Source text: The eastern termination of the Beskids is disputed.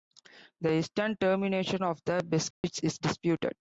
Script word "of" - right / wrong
right